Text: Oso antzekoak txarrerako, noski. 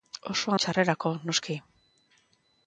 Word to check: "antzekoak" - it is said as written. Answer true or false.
false